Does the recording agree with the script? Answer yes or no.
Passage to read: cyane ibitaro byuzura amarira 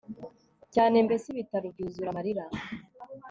no